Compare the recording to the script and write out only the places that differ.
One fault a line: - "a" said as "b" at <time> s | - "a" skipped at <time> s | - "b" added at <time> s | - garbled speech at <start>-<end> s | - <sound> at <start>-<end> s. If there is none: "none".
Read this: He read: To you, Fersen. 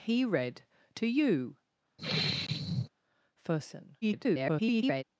- sigh at 2.0-2.9 s
- garbled speech at 4.0-5.0 s